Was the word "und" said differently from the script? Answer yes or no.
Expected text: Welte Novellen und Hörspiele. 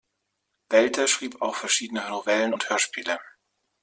no